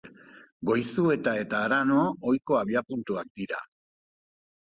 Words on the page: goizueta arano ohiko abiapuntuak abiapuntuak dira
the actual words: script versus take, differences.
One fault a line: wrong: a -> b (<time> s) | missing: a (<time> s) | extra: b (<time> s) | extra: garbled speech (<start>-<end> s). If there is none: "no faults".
extra: eta (1.4 s)
missing: abiapuntuak (3.3 s)